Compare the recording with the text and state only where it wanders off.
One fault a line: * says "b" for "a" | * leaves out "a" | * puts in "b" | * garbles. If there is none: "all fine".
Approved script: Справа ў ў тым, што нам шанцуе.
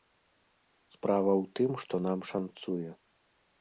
* leaves out "ў"